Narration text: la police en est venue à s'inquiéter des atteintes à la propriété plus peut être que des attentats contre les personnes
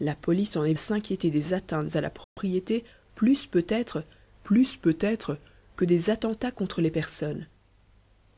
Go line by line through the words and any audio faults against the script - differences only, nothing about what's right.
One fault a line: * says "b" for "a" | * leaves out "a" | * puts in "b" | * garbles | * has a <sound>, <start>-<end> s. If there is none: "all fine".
* leaves out "venue"
* has a dropout, 2.2-2.4 s
* puts in "plus peut être"